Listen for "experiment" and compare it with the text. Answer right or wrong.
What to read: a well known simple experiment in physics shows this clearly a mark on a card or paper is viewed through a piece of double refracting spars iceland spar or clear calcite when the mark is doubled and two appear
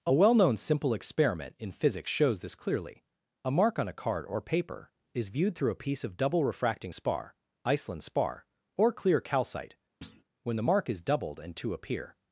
right